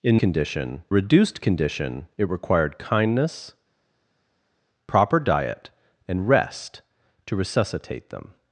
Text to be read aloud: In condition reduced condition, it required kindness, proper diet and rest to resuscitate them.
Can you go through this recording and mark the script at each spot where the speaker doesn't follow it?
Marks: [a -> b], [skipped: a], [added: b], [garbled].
In condition reduced condition, it required kindness, proper diet and rest to resuscitate them.